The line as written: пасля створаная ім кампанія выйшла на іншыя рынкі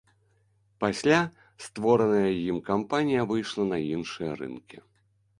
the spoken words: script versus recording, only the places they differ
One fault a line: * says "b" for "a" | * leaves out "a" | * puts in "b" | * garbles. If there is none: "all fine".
all fine